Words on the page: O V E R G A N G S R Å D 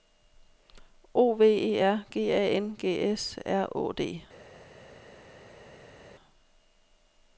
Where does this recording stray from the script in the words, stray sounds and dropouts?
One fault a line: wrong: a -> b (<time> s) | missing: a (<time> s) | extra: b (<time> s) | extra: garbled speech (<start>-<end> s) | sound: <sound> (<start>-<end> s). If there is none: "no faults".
no faults